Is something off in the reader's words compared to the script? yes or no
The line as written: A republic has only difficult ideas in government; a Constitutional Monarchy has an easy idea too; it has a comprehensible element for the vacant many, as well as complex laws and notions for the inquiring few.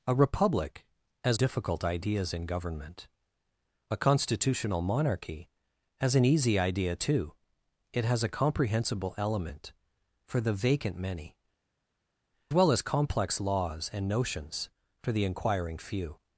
yes